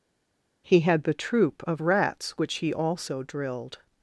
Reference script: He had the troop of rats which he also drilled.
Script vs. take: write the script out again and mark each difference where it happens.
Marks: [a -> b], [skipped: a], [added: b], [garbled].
He had the troop of rats which he also drilled.